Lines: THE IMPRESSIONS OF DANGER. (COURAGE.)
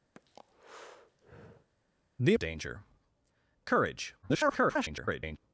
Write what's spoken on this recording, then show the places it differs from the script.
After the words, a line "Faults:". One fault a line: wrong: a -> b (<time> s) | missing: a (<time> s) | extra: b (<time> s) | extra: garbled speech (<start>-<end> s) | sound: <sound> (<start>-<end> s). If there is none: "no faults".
THE OF DANGER. (COURAGE.) [garbled]
Faults:
sound: breath (0.1-1.7 s)
missing: IMPRESSIONS (2.3 s)
extra: garbled speech (4.2-5.4 s)